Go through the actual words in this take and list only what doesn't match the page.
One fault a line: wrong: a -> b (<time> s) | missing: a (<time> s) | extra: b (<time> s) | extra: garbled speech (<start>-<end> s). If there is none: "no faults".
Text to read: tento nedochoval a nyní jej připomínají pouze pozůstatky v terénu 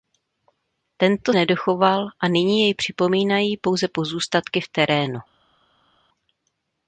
no faults